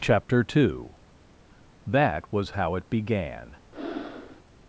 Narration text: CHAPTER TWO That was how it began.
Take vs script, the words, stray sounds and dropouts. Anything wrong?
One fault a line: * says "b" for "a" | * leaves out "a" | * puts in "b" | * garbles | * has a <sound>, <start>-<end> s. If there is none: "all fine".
* has a breath, 3.7-4.4 s